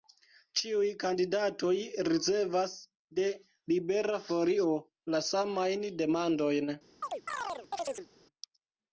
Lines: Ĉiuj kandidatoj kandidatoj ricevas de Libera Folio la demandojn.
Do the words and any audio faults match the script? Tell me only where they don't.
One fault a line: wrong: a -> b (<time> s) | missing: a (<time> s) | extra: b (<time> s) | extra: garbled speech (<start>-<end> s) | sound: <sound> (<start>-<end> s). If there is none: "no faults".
missing: kandidatoj (1.7 s)
extra: samajn (5.3 s)
sound: chirp (7.0-8.1 s)